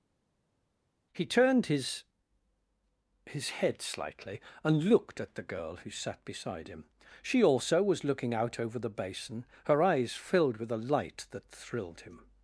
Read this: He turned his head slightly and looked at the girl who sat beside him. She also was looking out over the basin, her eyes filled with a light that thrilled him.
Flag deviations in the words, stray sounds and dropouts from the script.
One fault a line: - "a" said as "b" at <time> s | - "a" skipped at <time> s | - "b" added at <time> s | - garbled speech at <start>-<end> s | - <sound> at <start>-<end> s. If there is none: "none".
- "his" added at 3.3 s